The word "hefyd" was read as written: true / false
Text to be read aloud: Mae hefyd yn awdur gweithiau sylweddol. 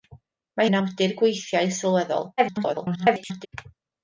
false